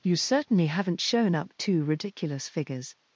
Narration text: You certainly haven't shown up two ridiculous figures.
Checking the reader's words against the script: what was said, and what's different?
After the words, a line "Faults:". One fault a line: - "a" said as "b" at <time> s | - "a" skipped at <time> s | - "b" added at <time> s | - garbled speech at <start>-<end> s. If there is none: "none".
You certainly haven't shown up two ridiculous figures.
Faults:
none